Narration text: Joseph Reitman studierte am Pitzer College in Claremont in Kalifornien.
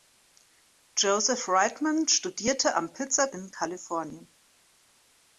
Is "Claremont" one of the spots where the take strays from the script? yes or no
yes